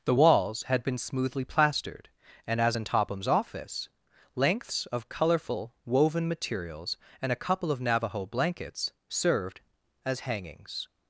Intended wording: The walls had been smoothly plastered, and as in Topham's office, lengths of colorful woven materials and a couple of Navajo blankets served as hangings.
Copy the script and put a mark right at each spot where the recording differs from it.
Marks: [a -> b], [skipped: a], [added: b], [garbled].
The walls had been smoothly plastered, and as in Topham's office, lengths of colorful woven materials and a couple of Navajo blankets served as hangings.